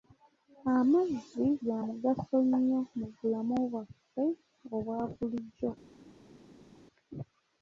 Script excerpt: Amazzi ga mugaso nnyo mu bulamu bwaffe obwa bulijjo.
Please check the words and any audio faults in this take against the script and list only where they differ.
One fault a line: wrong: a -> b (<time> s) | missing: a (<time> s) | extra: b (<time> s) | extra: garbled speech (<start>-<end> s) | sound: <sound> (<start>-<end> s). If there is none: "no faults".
no faults